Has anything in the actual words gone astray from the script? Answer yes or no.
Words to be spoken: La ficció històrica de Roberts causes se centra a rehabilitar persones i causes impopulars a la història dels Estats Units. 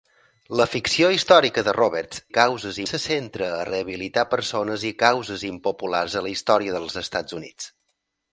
no